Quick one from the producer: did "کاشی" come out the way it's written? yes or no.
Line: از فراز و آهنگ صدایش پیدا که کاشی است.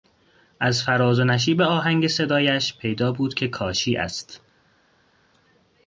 yes